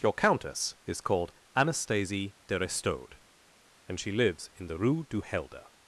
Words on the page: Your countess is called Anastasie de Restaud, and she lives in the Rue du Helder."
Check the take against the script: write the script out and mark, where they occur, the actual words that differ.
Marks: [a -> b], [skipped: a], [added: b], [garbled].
Your countess is called Anastasie de Restaud, and she lives in the Rue du Helder."